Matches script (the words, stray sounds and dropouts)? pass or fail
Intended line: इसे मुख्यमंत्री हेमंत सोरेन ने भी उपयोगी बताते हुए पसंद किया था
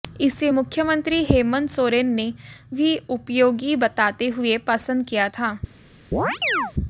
fail